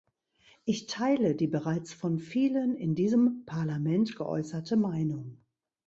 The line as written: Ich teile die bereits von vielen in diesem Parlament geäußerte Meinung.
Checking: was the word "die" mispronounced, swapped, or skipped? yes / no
no